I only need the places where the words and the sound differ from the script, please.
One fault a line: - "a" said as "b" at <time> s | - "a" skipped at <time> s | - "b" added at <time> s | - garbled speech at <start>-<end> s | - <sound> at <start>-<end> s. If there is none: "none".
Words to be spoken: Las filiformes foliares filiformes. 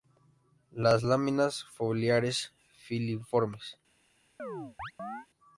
- "filiformes" said as "láminas" at 1.0 s
- chirp at 4.4-5.3 s